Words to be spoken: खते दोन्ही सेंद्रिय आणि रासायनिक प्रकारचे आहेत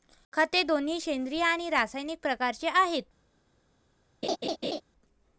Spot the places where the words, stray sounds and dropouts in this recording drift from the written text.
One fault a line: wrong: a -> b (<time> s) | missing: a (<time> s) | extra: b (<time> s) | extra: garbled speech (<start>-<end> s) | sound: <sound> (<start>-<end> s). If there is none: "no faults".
sound: laugh (4.2-4.8 s)